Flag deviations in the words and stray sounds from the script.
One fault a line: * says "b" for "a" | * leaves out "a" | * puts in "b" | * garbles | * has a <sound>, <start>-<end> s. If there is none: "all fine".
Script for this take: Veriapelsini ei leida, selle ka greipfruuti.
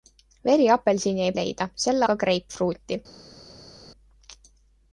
all fine